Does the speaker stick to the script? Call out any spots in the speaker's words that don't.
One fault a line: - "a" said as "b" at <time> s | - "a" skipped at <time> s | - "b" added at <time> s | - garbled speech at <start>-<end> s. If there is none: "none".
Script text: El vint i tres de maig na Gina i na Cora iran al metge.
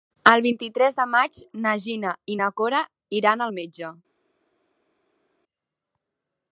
none